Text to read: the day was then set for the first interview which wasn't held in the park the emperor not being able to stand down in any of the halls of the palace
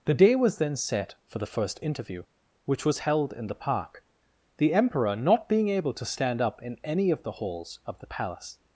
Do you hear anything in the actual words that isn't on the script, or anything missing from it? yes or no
yes